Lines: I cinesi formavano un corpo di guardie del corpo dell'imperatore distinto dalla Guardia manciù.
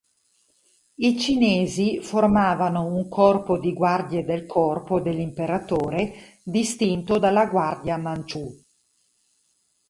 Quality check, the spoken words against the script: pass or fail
pass